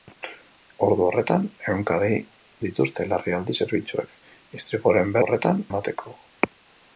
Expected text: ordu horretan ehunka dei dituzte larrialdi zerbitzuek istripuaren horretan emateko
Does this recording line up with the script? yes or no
yes